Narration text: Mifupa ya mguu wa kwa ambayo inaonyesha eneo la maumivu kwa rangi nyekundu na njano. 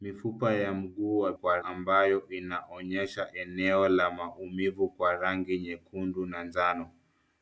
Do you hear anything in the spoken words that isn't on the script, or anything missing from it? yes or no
no